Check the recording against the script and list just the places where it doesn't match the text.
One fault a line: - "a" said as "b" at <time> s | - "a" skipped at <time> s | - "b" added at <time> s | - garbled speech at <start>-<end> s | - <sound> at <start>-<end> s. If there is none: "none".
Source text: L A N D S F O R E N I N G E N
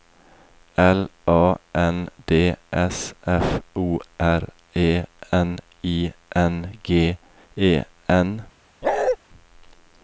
- bark at 8.8-9.2 s